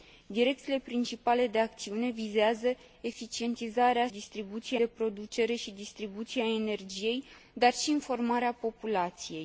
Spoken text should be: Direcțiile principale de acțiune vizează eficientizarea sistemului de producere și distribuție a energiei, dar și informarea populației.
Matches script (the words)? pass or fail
fail